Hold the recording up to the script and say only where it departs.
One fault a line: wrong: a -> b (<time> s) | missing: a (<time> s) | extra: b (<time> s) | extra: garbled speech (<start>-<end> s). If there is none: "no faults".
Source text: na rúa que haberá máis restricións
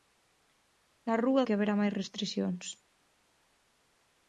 no faults